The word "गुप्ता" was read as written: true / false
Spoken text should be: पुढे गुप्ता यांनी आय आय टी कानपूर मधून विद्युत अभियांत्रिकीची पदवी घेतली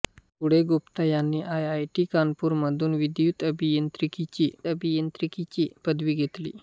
true